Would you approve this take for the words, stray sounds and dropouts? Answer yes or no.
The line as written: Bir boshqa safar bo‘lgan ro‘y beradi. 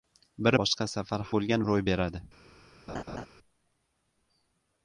no